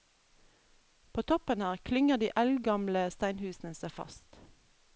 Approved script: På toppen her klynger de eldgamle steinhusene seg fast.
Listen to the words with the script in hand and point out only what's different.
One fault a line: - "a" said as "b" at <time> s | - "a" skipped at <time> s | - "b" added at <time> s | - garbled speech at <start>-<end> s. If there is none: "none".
none